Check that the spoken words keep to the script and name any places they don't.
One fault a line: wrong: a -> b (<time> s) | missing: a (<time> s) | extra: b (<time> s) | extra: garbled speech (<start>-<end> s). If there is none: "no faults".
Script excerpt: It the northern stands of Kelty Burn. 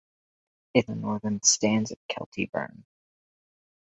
no faults